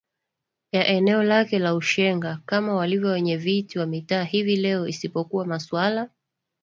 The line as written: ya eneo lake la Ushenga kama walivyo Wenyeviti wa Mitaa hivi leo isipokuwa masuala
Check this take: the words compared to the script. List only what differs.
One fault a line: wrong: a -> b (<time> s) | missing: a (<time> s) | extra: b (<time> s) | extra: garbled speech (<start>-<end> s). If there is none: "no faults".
no faults